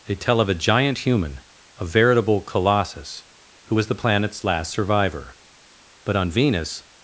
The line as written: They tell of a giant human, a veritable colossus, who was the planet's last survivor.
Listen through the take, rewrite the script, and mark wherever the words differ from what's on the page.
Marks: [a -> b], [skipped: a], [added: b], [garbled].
They tell of a giant human, a veritable colossus, who was the planet's last survivor. [added: But on Venus]